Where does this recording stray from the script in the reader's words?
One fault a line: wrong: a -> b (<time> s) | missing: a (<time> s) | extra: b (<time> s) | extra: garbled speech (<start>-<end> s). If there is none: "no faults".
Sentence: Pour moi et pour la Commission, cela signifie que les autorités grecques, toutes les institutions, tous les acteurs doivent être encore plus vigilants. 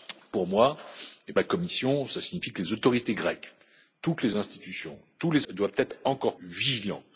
missing: pour (1.3 s)
missing: acteurs (5.5 s)
missing: plus (6.4 s)